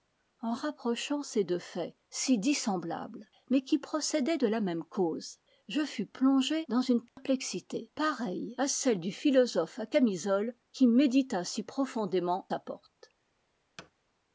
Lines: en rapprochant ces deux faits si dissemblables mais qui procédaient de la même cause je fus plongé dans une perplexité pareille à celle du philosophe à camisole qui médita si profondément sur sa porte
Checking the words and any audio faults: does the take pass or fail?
fail